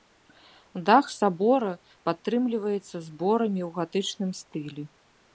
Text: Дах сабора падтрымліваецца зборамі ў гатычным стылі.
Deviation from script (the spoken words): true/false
false